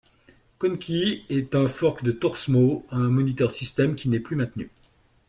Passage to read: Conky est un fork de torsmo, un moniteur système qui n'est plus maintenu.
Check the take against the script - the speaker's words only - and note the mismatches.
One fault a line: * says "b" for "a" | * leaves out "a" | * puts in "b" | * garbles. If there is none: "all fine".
all fine